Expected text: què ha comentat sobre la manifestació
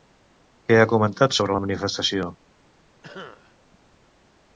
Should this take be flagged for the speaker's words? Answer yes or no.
no